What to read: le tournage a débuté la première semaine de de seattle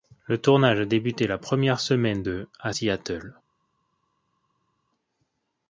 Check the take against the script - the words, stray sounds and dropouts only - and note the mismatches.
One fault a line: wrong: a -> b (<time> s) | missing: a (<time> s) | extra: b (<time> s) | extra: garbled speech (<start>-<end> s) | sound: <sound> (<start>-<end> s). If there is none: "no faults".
wrong: de -> à (2.6 s)